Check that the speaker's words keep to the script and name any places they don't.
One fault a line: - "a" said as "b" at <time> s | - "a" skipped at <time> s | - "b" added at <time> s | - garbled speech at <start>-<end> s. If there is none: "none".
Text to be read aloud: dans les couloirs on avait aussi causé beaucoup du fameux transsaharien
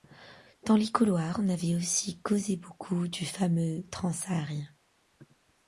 none